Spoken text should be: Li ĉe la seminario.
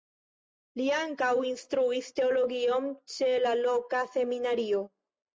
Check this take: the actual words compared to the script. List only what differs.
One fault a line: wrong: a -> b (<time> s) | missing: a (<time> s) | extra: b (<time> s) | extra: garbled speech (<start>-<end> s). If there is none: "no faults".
extra: ankaŭ instruis teologion (1.0 s)
extra: loka (3.6 s)